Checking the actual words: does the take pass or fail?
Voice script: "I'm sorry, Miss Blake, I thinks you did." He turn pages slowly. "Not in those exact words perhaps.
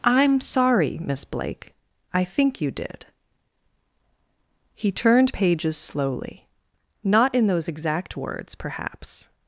fail